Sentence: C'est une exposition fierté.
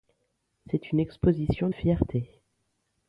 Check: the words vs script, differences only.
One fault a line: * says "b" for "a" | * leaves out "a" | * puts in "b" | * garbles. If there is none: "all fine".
all fine